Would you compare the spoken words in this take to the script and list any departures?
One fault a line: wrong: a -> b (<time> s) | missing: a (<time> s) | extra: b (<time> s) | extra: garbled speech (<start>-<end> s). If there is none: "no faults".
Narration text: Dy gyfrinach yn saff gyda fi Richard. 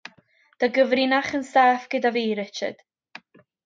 no faults